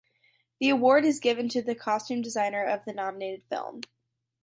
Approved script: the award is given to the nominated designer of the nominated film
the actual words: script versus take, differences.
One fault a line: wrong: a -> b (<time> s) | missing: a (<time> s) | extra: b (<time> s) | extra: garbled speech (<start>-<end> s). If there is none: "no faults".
wrong: nominated -> costume (1.8 s)